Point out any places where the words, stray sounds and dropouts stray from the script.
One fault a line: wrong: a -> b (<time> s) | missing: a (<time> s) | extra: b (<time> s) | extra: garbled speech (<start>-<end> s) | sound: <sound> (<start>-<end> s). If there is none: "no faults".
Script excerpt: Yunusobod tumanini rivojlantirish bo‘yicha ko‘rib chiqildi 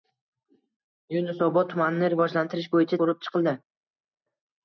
no faults